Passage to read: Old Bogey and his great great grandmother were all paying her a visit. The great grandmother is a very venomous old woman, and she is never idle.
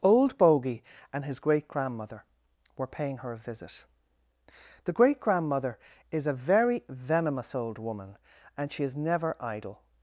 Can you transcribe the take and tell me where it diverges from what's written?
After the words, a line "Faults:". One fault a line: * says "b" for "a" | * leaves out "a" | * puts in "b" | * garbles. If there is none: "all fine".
Old Bogey and his great grandmother were paying her a visit. The great grandmother is a very venomous old woman, and she is never idle.
Faults:
* leaves out "great"
* leaves out "all"